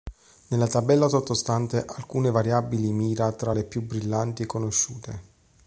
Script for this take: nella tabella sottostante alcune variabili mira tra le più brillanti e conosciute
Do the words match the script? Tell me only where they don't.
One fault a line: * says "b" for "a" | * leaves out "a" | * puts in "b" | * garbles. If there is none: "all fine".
all fine